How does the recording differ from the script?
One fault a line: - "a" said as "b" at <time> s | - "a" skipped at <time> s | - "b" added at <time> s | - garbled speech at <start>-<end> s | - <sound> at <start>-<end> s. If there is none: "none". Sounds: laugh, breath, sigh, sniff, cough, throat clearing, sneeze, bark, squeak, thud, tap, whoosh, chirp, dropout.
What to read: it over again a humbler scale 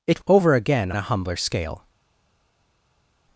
none